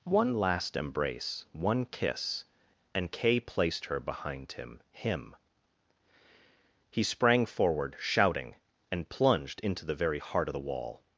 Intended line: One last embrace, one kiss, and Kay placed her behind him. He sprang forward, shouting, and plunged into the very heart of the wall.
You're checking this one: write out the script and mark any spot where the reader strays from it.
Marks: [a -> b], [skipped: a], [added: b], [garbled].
One last embrace, one kiss, and Kay placed her behind him. [added: him] He sprang forward, shouting, and plunged into the very heart of the wall.